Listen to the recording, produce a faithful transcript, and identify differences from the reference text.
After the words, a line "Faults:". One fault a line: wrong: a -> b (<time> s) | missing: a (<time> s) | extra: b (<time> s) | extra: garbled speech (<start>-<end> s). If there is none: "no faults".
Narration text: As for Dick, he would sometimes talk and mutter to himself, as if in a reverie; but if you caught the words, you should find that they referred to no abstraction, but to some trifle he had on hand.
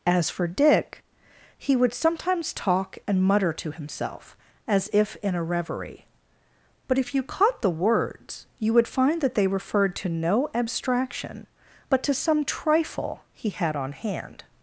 As for Dick, he would sometimes talk and mutter to himself, as if in a reverie; but if you caught the words, you would find that they referred to no abstraction, but to some trifle he had on hand.
Faults:
wrong: should -> would (8.7 s)